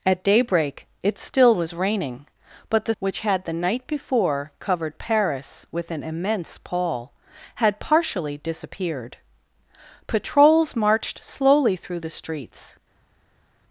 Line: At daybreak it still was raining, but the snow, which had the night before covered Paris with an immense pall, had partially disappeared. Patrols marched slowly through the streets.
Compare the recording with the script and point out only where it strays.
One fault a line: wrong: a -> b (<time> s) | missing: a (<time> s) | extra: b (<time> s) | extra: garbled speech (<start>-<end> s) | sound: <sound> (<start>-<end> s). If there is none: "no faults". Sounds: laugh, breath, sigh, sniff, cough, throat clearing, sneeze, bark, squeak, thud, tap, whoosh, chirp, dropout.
missing: snow (3.0 s)